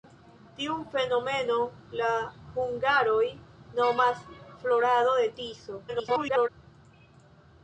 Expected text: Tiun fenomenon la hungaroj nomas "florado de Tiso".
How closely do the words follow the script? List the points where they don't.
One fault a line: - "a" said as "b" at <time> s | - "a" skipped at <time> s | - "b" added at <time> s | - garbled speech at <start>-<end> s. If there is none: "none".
- garbled speech at 5.9-6.5 s